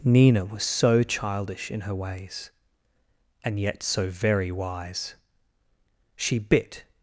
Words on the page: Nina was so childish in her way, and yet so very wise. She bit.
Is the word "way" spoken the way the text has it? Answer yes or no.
no